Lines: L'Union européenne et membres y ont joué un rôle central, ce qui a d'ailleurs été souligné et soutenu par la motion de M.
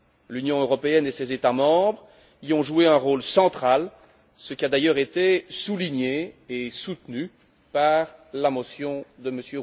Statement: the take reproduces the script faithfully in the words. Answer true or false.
false